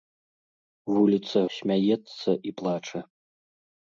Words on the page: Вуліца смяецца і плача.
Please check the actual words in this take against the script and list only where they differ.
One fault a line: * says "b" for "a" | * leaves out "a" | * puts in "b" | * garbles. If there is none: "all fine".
all fine